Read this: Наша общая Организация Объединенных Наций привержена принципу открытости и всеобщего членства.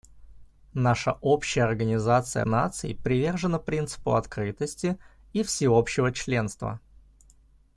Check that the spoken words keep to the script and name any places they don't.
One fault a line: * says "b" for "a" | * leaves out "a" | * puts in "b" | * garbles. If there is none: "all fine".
* leaves out "Объединенных"